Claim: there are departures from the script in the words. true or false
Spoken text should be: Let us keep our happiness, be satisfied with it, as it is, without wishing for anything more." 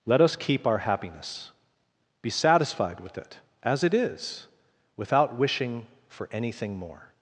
false